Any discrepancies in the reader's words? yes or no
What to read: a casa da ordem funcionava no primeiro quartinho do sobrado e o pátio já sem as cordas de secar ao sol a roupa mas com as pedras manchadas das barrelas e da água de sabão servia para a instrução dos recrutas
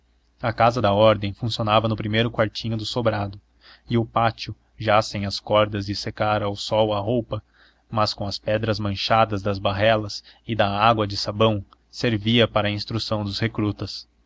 no